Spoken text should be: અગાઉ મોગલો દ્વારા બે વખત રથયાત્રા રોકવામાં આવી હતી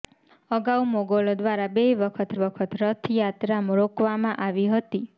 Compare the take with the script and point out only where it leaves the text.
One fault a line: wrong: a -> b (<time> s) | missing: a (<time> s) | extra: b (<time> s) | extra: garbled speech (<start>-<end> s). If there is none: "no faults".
extra: વખત (2.4 s)